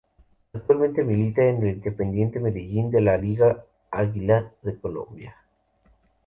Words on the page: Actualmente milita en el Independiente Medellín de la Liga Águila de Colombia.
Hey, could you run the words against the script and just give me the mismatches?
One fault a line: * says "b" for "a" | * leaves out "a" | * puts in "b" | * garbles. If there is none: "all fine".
all fine